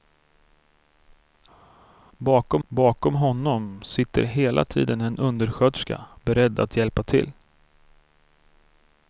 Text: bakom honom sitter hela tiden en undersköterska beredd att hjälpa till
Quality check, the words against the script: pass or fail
fail